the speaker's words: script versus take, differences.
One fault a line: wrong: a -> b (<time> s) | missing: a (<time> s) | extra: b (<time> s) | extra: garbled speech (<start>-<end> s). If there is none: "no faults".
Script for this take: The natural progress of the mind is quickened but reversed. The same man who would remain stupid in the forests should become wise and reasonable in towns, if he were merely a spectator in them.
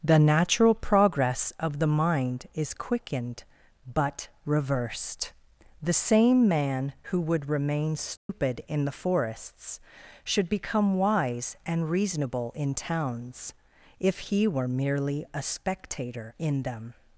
no faults